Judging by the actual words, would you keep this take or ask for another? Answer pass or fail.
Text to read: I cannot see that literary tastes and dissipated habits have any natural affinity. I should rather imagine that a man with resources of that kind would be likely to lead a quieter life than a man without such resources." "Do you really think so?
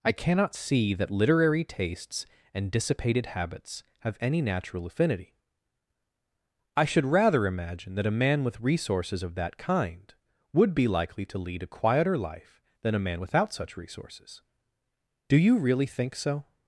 pass